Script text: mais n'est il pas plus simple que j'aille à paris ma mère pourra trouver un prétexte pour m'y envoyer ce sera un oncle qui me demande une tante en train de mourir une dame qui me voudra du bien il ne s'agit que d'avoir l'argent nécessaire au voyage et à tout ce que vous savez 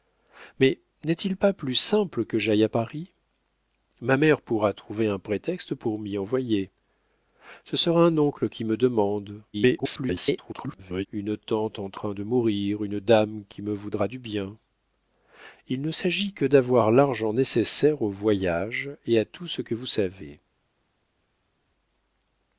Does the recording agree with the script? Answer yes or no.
no